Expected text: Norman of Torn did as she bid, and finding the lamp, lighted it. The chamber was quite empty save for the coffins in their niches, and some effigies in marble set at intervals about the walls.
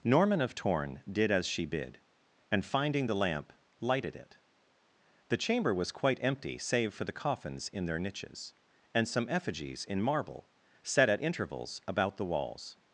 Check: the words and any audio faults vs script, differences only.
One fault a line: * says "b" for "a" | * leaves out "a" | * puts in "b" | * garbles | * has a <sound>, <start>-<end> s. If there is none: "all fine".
all fine